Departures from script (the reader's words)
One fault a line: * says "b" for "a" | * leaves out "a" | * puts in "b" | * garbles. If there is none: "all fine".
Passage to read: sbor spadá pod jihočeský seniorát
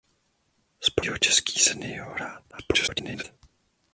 * leaves out "spadá pod"
* garbles